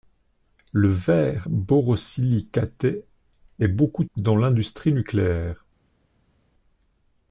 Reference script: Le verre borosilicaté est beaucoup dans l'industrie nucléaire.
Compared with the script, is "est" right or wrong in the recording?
right